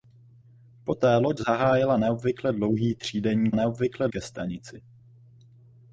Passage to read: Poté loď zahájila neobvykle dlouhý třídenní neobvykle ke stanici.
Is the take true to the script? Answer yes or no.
yes